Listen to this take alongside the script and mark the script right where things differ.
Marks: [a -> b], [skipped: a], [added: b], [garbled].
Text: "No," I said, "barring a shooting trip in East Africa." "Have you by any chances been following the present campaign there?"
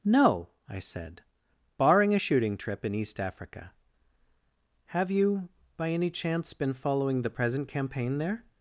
"No," I said, "barring a shooting trip in East Africa." "Have you by any [chances -> chance] been following the present campaign there?"